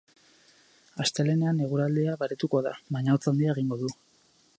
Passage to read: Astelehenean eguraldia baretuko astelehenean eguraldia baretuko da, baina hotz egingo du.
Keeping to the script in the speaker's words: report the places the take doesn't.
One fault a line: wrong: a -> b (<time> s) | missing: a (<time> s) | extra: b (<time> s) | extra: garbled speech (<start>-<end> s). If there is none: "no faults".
missing: astelehenean eguraldia baretuko (2.6 s)
extra: handia (3.3 s)